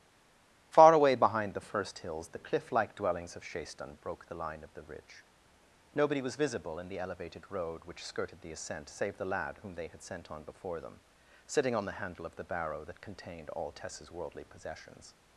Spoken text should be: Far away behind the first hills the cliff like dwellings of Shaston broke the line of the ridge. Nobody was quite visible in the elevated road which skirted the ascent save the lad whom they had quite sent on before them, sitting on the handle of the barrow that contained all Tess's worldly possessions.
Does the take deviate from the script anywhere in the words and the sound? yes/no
yes